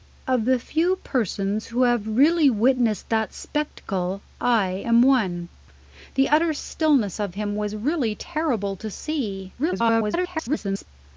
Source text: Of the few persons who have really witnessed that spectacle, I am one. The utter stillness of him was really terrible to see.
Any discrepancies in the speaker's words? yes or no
yes